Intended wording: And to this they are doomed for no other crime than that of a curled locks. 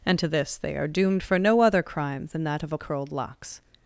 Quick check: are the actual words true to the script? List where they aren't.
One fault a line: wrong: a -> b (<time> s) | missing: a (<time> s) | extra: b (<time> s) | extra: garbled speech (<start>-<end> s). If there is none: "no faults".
no faults